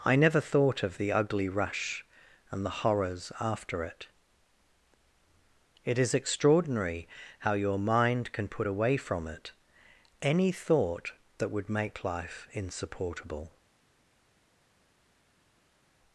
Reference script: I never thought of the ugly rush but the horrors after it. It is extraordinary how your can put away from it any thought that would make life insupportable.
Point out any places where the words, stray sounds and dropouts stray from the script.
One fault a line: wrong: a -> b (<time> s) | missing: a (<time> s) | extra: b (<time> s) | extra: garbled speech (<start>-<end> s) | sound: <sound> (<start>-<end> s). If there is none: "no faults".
wrong: but -> and (2.5 s)
extra: mind (7.8 s)